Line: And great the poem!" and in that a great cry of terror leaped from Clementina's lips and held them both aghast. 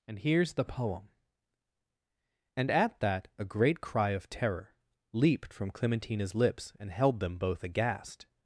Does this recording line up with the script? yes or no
no